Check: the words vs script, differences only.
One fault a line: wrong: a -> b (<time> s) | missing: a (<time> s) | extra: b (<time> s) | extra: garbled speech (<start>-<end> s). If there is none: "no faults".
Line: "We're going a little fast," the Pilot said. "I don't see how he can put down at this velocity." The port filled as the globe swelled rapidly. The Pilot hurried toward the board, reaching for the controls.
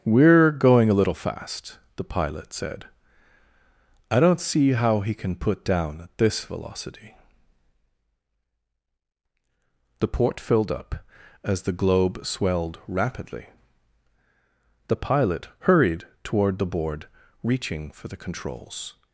extra: up (10.7 s)